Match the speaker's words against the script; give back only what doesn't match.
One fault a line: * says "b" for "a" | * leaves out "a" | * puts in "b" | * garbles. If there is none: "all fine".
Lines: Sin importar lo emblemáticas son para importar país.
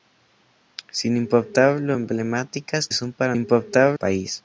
all fine